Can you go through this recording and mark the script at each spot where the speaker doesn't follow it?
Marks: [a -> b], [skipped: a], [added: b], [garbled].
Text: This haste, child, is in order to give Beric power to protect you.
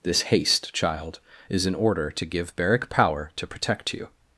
This haste, child, is in order to give Beric power to protect you.